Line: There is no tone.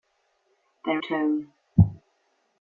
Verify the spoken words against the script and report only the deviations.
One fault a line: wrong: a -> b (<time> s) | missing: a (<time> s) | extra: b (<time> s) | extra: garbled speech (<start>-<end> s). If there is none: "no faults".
missing: is no (1.0 s)